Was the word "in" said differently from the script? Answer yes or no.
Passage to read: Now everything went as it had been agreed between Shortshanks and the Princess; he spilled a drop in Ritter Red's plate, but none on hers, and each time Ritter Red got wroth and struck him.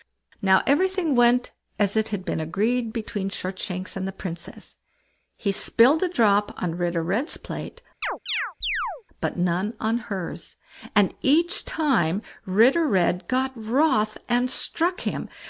yes